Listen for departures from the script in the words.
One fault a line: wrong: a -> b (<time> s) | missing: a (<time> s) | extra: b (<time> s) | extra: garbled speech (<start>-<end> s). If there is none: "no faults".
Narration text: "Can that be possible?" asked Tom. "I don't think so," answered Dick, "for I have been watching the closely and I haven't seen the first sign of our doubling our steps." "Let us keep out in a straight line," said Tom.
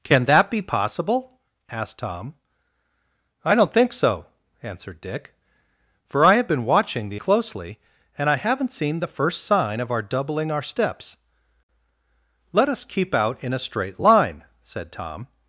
no faults